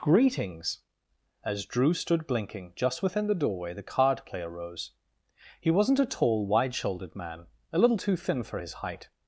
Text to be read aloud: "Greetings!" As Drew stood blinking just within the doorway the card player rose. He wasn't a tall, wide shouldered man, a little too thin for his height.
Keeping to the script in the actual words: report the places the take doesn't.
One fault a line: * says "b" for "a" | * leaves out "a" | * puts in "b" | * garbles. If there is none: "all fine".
all fine